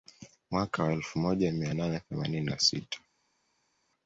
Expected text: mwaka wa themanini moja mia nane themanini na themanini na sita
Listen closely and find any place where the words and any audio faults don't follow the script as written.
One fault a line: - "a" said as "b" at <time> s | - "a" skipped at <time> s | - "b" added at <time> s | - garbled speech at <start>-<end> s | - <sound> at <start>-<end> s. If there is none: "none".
- "themanini" said as "elfu" at 0.9 s
- "themanini na" skipped at 2.6 s